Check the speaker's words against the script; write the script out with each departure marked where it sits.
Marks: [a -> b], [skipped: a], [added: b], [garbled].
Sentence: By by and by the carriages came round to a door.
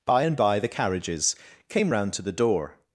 By [skipped: by] and by the carriages came round to [a -> the] door.